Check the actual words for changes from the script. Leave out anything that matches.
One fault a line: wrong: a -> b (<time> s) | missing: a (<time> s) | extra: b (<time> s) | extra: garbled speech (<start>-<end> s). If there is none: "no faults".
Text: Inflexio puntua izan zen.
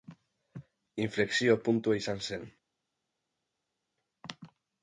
no faults